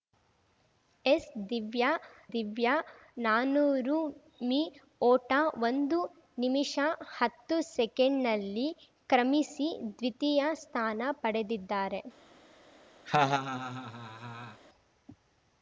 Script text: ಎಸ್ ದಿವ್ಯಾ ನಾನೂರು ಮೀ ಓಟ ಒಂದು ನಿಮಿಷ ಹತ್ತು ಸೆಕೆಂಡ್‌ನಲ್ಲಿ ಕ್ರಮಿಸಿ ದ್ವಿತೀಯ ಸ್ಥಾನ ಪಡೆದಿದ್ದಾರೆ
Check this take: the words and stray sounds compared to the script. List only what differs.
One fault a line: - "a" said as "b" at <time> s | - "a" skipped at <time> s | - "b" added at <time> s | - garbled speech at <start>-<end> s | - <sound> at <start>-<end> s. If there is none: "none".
- "ದಿವ್ಯಾ" added at 2.3 s
- laugh at 13.1-14.6 s